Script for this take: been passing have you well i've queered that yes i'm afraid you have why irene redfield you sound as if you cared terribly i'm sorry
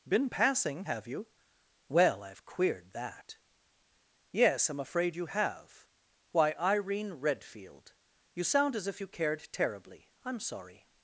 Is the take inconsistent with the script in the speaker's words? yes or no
no